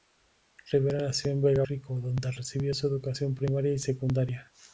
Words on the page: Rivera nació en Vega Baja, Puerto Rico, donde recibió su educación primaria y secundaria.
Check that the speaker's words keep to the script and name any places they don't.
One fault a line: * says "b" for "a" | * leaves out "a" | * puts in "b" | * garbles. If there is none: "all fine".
* leaves out "Baja Puerto"